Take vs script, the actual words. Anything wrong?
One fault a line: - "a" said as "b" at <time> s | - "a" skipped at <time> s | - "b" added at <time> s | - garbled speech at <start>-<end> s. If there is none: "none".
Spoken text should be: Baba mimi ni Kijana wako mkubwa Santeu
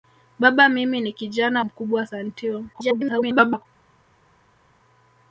- "wako" skipped at 1.6 s
- garbled speech at 2.7-3.7 s